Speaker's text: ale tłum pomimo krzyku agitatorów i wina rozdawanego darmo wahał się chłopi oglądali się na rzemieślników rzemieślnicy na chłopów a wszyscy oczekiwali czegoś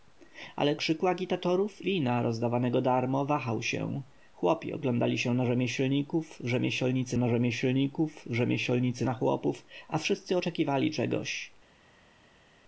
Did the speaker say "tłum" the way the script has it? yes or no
no